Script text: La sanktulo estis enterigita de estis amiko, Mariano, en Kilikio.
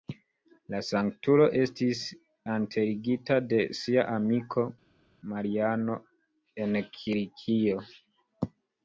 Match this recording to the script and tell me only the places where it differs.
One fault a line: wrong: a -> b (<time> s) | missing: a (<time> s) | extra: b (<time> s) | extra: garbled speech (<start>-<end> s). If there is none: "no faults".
wrong: estis -> sia (3.8 s)